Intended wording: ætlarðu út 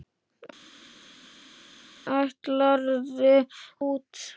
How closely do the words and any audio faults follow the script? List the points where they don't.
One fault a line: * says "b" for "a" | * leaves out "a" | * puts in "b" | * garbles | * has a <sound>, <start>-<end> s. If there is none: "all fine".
all fine